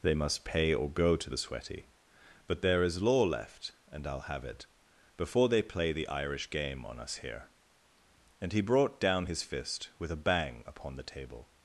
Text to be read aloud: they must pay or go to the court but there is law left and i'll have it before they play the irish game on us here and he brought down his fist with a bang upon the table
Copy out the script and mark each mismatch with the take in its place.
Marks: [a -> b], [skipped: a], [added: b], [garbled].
they must pay or go to the [court -> sweaty] but there is law left and i'll have it before they play the irish game on us here and he brought down his fist with a bang upon the table